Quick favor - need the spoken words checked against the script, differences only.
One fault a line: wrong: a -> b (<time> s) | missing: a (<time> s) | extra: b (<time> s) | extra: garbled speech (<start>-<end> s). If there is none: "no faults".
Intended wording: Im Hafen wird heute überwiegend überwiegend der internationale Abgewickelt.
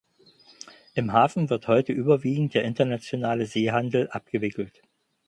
missing: überwiegend (2.5 s)
extra: Seehandel (3.5 s)